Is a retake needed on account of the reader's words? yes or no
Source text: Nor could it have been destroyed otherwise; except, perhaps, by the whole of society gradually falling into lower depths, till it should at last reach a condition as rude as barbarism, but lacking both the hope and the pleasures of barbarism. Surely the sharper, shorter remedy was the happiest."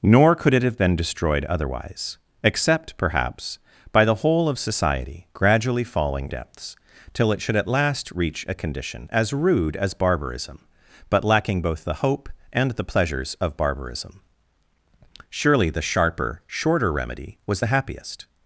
yes